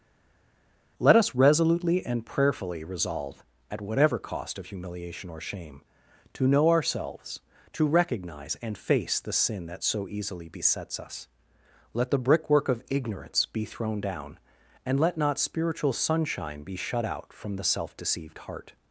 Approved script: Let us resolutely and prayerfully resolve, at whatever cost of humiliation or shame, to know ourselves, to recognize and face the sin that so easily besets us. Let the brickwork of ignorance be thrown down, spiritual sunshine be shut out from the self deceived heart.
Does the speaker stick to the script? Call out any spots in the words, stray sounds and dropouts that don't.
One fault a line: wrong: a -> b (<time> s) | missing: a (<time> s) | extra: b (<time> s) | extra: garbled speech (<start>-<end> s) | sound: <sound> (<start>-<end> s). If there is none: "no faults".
extra: and let not (14.9 s)